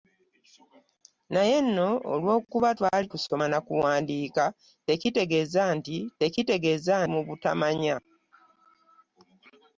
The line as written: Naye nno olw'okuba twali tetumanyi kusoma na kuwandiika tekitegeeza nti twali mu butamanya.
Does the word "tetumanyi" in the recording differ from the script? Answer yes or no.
yes